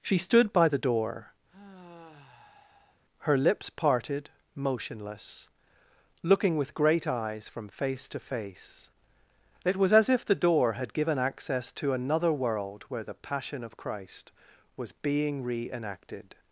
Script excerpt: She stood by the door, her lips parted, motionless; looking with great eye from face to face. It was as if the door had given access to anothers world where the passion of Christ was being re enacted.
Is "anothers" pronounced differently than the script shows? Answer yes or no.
yes